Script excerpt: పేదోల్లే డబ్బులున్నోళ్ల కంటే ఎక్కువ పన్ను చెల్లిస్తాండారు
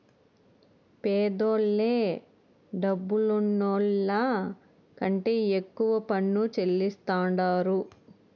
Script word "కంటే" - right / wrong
right